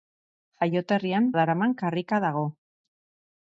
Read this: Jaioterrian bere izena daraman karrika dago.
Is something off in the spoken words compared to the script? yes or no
yes